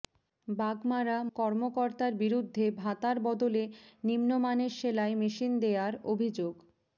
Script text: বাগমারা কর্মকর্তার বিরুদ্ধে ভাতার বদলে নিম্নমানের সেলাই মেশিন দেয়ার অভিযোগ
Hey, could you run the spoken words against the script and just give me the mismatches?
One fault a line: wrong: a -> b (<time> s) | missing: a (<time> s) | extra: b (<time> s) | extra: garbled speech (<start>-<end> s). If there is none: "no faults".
no faults